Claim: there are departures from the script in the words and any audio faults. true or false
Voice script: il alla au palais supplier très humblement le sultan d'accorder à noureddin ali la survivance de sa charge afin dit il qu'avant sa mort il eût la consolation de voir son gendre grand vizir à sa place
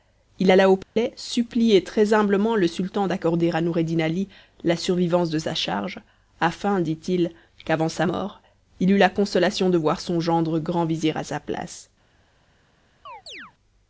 true